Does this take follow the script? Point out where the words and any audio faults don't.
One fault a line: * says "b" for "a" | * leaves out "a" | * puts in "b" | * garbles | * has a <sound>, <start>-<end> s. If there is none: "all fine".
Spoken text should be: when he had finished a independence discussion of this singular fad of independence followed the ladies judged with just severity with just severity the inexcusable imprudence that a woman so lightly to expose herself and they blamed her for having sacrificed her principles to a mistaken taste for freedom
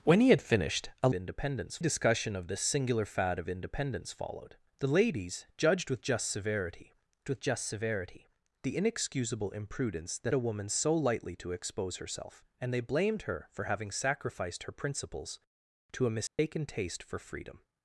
* has a dropout, 16.3-16.4 s